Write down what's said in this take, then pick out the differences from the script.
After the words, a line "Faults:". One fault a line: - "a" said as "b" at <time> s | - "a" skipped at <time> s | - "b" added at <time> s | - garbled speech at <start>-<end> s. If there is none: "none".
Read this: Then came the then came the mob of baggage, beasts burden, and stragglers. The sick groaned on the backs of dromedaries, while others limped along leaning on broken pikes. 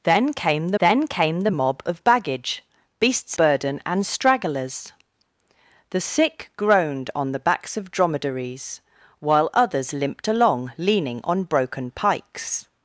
Then came the then came the mob of baggage, beasts burden, and stragglers. The sick groaned on the backs of dromedaries, while others limped along leaning on broken pikes.
Faults:
none